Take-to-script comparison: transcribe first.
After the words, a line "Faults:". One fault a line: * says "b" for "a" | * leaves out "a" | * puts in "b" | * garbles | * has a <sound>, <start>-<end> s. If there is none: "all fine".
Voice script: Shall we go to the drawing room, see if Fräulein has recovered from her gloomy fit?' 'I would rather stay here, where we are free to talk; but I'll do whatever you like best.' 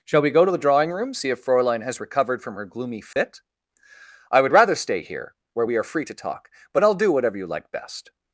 Shall we go to the drawing room, see if Fräulein has recovered from her gloomy fit?' 'I would rather stay here, where we are free to talk; but I'll do whatever you like best.'
Faults:
* has a dropout, 3.1-3.2 s